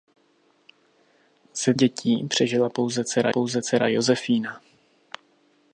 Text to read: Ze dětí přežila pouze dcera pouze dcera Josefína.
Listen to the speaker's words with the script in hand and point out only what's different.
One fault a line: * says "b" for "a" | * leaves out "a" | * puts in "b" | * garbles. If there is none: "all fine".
all fine